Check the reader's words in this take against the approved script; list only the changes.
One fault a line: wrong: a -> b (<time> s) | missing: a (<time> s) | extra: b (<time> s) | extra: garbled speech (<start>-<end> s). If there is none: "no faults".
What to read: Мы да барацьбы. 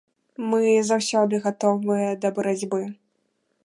extra: заўсёды гатовыя (0.9 s)